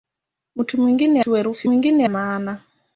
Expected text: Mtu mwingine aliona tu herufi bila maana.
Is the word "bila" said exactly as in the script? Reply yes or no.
no